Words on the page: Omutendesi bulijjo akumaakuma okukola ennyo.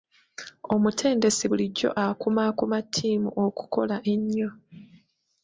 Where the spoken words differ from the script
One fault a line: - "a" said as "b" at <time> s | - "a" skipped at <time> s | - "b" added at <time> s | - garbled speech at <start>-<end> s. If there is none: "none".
- "ttiimu" added at 2.8 s